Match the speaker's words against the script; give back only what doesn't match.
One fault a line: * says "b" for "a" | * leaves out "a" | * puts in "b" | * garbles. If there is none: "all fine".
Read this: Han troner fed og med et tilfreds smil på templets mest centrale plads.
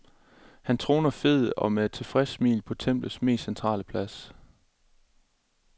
all fine